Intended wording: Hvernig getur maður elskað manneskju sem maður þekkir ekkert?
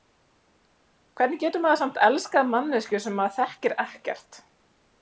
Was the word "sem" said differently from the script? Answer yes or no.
no